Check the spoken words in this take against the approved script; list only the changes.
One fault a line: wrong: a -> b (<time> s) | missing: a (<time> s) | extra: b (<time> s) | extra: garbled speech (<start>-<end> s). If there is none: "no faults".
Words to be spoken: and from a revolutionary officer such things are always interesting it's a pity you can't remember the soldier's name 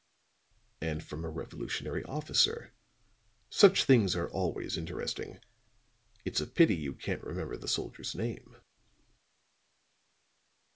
no faults